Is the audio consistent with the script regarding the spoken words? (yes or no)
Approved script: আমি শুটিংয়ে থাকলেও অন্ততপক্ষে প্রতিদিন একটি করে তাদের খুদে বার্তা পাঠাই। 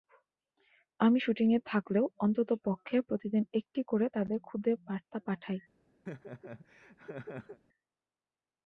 yes